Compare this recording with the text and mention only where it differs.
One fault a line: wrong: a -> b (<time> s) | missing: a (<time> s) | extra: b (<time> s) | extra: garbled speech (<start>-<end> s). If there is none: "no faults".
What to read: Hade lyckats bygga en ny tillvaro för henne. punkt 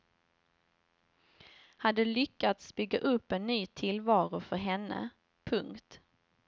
extra: upp (3.0 s)